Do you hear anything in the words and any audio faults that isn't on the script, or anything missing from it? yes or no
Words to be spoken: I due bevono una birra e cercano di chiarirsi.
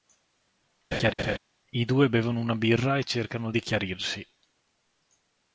yes